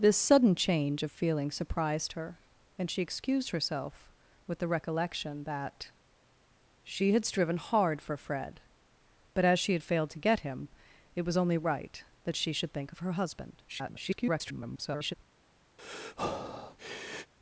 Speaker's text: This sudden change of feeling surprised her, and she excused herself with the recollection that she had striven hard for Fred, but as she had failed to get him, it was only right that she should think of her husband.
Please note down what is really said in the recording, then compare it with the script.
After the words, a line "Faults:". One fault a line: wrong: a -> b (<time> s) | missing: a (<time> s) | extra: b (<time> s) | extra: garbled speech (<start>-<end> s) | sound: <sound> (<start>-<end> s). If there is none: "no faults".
This sudden change of feeling surprised her, and she excused herself with the recollection that she had striven hard for Fred, but as she had failed to get him, it was only right that she should think of her husband. [garbled]
Faults:
extra: garbled speech (13.7-15.1 s)
sound: breath (15.8-17.3 s)